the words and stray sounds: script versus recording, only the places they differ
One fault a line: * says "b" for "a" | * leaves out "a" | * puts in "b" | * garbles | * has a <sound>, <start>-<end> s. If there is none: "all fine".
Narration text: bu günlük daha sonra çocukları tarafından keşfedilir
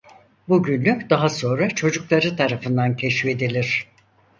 all fine